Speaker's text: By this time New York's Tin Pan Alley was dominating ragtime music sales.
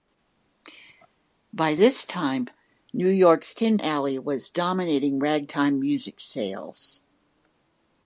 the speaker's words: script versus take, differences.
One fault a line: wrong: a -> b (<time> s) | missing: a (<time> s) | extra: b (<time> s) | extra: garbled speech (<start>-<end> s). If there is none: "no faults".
missing: Pan (3.8 s)